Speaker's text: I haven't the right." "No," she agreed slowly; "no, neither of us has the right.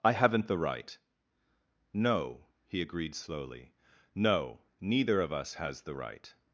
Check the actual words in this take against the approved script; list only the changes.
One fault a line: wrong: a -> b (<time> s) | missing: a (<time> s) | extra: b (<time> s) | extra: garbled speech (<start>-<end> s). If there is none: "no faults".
wrong: she -> he (2.7 s)